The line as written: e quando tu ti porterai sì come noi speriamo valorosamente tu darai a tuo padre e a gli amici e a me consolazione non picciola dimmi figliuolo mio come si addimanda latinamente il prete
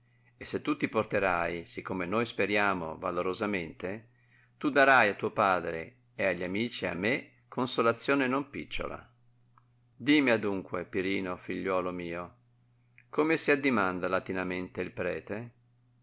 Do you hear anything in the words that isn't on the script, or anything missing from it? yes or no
yes